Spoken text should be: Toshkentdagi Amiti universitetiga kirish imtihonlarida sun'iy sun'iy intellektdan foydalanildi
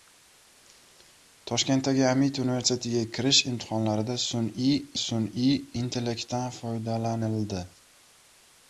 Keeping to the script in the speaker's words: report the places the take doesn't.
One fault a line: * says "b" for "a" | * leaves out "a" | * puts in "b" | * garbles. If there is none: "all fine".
all fine